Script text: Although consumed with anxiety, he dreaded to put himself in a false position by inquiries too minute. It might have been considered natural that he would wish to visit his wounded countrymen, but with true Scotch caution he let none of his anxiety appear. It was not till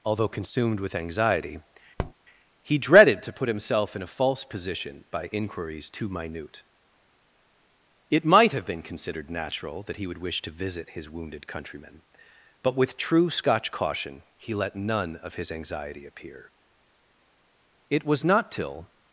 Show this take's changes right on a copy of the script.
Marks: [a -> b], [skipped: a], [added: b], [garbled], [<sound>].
Although consumed with anxiety, [tap] he dreaded to put himself in a false position by inquiries too minute. It might have been considered natural that he would wish to visit his wounded countrymen, but with true Scotch caution he let none of his anxiety appear. It was not till